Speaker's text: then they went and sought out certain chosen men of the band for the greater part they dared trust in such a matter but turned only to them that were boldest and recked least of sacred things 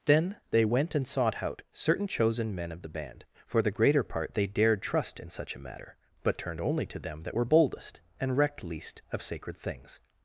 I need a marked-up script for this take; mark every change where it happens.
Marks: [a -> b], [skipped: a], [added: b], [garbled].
then they went and sought out certain chosen men of the band for the greater part they dared trust in such a matter but turned only to them that were boldest and recked least of sacred things